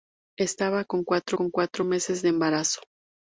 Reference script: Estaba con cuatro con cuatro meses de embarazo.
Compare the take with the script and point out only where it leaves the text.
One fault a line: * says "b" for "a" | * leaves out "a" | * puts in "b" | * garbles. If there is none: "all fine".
all fine